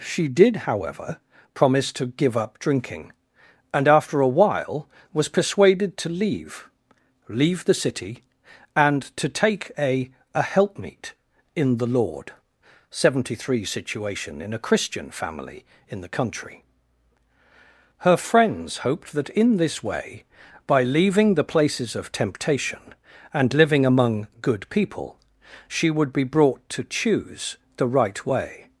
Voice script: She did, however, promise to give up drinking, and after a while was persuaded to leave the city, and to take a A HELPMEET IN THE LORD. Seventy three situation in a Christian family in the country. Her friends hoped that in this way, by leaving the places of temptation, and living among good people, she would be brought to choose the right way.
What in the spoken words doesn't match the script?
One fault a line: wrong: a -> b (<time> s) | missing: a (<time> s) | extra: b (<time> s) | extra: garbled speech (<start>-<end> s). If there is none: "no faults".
extra: leave (7.3 s)